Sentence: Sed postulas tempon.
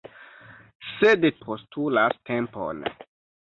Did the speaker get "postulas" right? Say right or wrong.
right